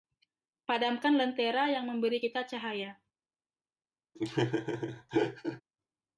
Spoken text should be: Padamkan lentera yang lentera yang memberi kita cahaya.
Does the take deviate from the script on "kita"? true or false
false